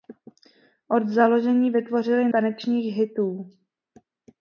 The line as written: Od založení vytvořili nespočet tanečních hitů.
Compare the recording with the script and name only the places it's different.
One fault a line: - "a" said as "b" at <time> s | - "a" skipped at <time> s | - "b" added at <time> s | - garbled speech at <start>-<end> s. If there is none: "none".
- "nespočet" skipped at 2.3 s